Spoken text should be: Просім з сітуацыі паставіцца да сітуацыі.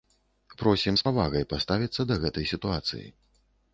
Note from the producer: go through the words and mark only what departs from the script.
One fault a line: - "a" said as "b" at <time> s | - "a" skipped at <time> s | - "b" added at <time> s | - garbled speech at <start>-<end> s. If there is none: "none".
- "сітуацыі" said as "павагай" at 1.0 s
- "гэтай" added at 2.3 s